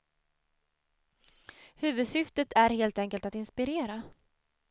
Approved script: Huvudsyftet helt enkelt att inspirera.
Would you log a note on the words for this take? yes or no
yes